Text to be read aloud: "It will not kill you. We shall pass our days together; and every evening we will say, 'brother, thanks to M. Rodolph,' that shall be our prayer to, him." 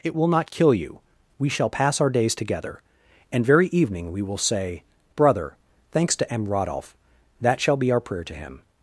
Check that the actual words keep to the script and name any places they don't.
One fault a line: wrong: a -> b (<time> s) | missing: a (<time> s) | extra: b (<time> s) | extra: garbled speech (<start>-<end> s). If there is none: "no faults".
wrong: every -> very (3.5 s)